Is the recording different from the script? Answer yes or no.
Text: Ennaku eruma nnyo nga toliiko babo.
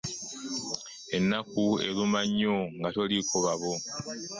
no